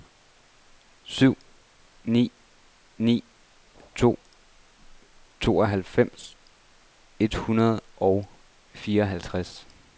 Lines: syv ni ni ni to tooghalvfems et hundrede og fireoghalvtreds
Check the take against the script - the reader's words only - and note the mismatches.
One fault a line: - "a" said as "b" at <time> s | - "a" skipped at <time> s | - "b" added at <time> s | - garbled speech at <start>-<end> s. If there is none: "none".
- "ni" skipped at 3.2 s